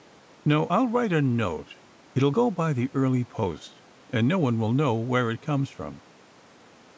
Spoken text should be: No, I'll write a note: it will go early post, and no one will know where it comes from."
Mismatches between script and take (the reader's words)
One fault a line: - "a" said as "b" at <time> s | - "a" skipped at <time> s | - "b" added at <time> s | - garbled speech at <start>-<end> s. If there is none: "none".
- "by the" added at 2.5 s